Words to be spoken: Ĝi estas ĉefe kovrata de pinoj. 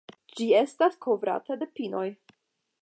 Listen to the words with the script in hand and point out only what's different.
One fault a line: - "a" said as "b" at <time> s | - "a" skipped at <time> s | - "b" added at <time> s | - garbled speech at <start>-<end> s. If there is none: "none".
- "ĉefe" skipped at 1.0 s